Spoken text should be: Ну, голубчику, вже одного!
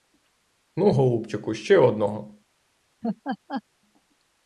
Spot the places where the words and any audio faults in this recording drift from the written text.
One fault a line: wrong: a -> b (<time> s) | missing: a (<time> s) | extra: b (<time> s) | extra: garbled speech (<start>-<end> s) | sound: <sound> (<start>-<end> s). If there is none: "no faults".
wrong: вже -> ще (1.5 s)
sound: laugh (3.0-3.6 s)